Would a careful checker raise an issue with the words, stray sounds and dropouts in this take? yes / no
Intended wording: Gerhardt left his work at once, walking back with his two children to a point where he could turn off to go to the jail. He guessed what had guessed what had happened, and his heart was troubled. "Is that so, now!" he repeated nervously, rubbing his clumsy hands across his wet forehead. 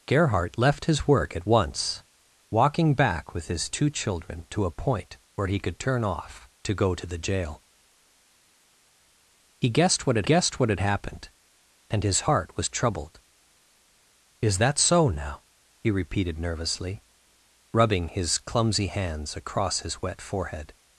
no